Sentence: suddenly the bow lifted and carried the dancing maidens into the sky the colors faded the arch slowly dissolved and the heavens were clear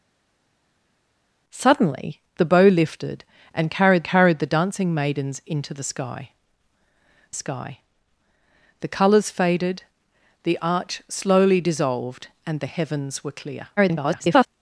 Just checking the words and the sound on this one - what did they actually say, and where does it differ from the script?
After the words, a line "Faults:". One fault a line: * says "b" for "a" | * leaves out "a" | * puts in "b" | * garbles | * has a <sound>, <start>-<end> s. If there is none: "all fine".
suddenly the bow lifted and carried carried the dancing maidens into the sky sky the colors faded the arch slowly dissolved and the heavens were clear [garbled]
Faults:
* puts in "carried"
* puts in "sky"
* garbles